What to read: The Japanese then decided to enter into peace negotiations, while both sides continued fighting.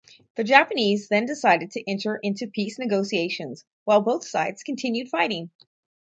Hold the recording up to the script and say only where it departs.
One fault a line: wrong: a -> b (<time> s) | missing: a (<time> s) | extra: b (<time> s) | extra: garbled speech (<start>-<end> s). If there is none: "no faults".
no faults